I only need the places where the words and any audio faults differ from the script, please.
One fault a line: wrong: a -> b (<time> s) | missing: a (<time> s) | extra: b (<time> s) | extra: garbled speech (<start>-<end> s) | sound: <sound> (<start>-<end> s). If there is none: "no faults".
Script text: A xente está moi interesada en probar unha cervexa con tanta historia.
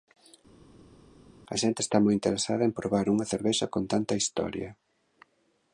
no faults